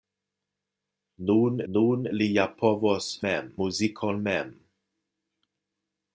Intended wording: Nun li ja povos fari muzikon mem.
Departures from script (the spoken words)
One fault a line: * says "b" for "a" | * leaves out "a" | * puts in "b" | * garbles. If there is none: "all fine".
* puts in "nun"
* says "mem" for "fari"